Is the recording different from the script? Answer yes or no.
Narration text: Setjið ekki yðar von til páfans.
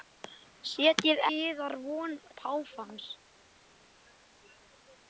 yes